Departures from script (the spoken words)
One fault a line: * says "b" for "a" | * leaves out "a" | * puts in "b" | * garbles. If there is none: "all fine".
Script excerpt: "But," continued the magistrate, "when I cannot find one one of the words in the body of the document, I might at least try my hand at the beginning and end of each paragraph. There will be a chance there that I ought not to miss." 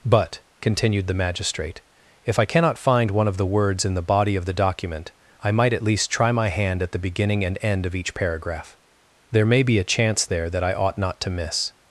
* says "if" for "when"
* leaves out "one"
* says "may" for "will"